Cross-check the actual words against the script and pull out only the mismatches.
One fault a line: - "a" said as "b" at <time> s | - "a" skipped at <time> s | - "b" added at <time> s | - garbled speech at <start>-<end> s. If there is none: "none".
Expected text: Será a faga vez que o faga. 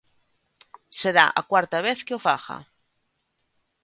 - "faga" said as "cuarta" at 1.5 s